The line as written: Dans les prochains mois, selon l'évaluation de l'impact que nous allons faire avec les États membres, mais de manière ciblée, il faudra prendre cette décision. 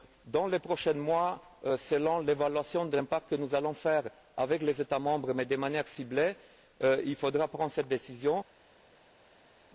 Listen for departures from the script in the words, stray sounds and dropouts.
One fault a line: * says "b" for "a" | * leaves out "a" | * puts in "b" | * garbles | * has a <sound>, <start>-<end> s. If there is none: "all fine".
all fine